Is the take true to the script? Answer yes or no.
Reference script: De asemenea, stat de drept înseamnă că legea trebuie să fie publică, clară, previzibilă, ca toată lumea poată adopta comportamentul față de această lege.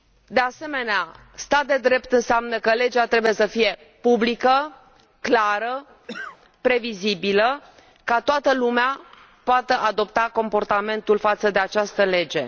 yes